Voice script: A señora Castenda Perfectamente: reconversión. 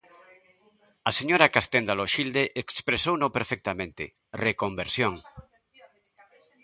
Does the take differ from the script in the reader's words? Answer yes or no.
yes